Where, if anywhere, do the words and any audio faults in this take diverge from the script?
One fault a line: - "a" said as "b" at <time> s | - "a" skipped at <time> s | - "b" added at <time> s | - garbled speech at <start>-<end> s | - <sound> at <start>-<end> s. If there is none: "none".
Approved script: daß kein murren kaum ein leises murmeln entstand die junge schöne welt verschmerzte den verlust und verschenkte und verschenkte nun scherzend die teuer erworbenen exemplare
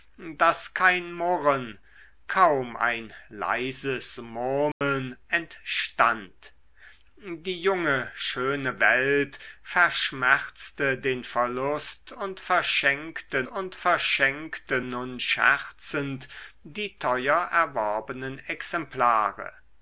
- dropout at 4.7-4.8 s